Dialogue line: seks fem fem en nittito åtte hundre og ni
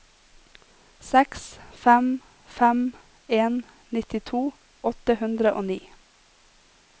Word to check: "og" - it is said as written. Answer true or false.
true